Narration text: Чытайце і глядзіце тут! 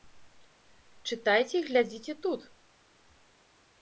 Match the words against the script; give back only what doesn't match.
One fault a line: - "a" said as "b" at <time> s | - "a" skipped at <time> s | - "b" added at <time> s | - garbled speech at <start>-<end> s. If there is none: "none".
none